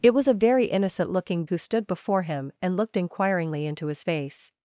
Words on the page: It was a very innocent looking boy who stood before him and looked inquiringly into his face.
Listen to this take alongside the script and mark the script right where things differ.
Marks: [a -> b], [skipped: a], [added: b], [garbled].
It was a very innocent looking [skipped: boy] who stood before him and looked inquiringly into his face.